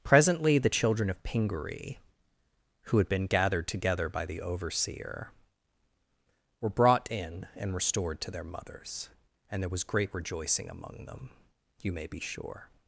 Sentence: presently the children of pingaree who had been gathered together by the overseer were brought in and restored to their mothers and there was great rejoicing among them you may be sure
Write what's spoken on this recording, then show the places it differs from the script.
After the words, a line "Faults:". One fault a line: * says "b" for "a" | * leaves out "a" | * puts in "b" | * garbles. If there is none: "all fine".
presently the children of pingaree who had been gathered together by the overseer were brought in and restored to their mothers and there was great rejoicing among them you may be sure
Faults:
all fine